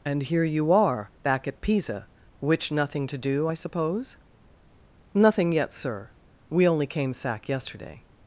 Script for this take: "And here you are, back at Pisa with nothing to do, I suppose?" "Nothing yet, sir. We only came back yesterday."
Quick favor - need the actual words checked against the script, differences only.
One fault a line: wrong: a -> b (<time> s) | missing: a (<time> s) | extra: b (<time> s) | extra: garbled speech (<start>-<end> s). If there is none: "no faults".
wrong: with -> which (2.4 s)
wrong: back -> sack (7.1 s)